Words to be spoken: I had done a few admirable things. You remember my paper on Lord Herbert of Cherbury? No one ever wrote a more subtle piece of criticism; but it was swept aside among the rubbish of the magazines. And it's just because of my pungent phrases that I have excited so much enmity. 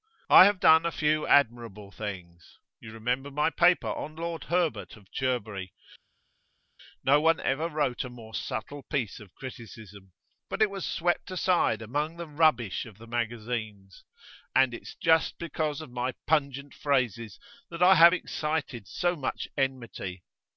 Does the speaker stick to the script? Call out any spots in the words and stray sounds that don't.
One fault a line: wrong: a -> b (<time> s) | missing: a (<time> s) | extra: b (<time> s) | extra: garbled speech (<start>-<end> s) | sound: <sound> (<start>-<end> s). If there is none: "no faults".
wrong: had -> have (0.5 s)